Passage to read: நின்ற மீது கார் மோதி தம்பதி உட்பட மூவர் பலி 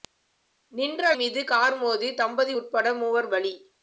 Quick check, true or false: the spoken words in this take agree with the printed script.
true